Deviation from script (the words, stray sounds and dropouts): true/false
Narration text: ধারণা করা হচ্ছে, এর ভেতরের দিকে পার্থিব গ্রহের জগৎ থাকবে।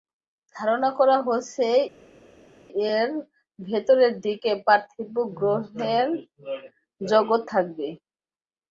false